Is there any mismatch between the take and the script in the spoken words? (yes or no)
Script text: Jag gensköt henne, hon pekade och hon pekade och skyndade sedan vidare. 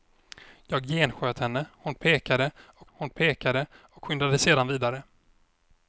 no